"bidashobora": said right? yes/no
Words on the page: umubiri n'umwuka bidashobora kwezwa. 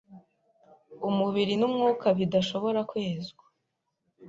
yes